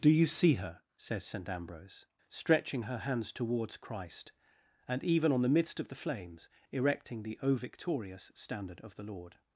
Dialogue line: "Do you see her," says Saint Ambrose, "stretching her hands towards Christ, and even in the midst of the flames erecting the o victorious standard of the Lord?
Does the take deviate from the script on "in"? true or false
true